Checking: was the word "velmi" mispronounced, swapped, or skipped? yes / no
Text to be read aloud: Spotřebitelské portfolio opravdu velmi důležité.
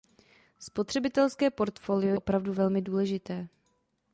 no